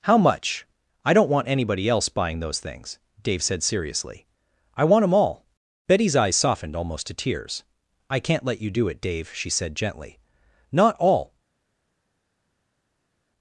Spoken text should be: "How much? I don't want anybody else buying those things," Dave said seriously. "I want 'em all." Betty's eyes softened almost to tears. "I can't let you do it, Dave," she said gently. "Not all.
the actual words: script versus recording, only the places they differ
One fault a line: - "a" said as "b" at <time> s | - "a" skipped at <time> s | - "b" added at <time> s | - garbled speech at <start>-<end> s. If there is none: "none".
none